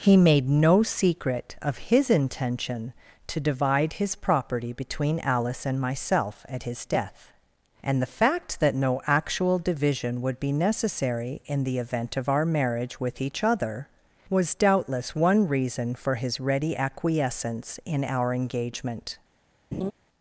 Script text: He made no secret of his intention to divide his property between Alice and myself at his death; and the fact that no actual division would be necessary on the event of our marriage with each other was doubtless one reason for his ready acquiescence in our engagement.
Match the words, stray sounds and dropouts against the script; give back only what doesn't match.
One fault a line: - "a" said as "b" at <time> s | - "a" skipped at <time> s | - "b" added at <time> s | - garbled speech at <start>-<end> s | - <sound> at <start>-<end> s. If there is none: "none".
- "on" said as "in" at 11.5 s
- laugh at 19.7-19.9 s